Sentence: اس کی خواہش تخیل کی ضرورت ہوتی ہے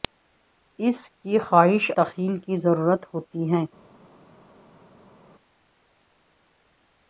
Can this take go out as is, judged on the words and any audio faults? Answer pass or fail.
pass